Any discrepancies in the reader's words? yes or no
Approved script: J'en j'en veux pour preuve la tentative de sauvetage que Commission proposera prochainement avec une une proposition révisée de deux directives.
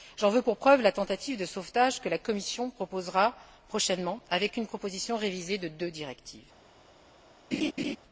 yes